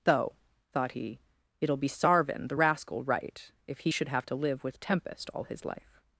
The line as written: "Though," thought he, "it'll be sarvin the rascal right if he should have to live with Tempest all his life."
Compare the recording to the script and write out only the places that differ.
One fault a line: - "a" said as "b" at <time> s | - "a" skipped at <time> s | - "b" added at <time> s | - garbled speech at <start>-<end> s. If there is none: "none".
none